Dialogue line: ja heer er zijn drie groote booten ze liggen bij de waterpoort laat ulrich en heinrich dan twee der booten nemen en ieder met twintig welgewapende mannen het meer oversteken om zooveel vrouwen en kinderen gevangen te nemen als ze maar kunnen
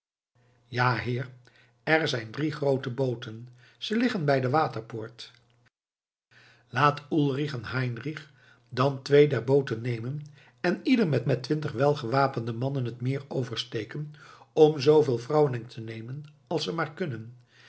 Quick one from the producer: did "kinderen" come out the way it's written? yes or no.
no